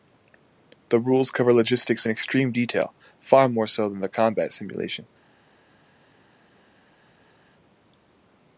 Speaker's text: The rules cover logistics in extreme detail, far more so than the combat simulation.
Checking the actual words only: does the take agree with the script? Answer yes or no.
yes